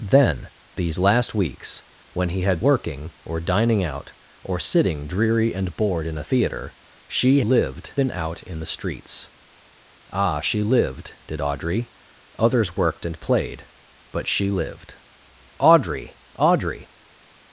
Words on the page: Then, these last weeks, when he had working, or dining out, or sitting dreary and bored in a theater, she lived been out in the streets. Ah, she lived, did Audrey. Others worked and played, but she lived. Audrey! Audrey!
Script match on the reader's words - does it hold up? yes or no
yes